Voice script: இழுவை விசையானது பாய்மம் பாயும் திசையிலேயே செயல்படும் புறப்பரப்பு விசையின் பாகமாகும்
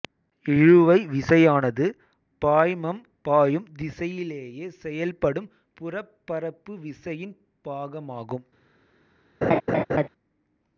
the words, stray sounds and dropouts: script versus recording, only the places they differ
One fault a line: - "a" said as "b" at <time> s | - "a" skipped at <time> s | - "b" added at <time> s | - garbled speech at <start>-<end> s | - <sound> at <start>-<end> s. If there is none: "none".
- laugh at 9.4-10.1 s